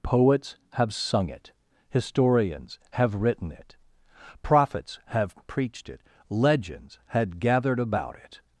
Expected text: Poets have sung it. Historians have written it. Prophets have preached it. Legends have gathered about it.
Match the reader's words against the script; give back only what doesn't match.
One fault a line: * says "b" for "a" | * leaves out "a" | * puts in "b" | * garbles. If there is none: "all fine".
* says "had" for "have"